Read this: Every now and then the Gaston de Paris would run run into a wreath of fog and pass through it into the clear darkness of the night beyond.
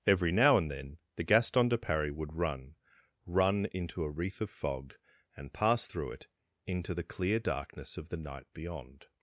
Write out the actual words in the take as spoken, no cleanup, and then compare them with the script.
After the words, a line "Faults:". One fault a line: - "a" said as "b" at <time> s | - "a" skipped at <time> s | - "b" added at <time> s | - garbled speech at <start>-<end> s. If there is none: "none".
Every now and then the Gaston de Paris would run run into a wreath of fog and pass through it into the clear darkness of the night beyond.
Faults:
none